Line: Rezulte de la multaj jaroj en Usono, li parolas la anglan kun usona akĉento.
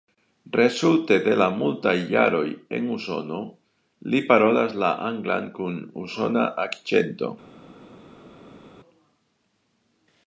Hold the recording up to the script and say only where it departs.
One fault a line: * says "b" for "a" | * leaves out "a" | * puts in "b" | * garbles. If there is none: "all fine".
all fine